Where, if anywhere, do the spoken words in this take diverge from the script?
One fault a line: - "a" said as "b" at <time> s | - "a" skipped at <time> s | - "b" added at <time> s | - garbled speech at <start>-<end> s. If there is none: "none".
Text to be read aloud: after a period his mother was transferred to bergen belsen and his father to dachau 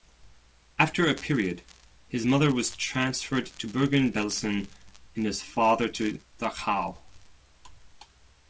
none